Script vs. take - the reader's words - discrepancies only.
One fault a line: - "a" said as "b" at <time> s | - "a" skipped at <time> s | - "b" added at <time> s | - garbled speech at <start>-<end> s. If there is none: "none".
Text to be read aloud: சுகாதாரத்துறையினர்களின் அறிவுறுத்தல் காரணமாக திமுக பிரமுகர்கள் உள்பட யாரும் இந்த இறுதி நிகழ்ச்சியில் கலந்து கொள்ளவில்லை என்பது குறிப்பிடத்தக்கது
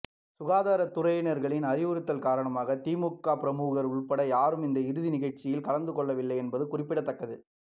none